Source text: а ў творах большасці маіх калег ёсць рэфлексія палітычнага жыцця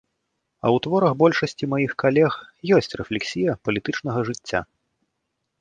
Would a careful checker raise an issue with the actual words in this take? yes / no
no